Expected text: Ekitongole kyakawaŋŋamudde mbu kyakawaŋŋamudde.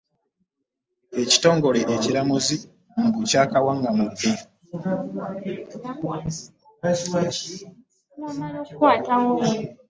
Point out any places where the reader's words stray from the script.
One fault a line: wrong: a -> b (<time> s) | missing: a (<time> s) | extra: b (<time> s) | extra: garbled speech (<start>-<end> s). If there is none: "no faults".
wrong: kyakawaŋŋamudde -> ekiramuzi (1.9 s)